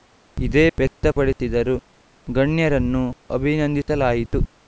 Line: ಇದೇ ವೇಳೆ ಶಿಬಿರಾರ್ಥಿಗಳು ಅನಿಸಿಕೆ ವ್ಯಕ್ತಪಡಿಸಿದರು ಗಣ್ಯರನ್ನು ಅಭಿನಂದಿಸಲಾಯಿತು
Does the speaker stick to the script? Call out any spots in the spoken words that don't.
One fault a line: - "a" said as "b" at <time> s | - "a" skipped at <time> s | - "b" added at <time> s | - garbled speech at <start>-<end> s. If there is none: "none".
- "ವೇಳೆ ಶಿಬಿರಾರ್ಥಿಗಳು ಅನಿಸಿಕೆ" skipped at 0.6 s